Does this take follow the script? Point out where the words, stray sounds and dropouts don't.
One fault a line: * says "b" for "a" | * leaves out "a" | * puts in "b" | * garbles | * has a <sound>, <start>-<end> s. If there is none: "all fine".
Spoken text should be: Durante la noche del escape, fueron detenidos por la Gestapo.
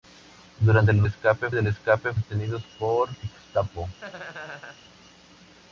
* says "escape" for "noche"
* leaves out "fueron"
* leaves out "la"
* has a laugh, 4.0-4.8 s